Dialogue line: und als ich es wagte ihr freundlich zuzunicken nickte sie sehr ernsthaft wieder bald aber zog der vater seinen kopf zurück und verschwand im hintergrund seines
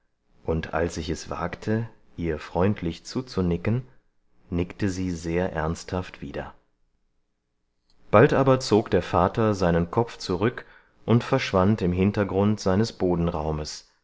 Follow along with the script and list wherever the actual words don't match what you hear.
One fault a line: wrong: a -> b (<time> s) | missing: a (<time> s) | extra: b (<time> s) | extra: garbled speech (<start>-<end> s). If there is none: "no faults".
no faults